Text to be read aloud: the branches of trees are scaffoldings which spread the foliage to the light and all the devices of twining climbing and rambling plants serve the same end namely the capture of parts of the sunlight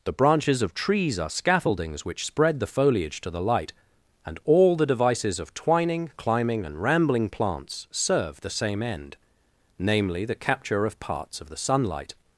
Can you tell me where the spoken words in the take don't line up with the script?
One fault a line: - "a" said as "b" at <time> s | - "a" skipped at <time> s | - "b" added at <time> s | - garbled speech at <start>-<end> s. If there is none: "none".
none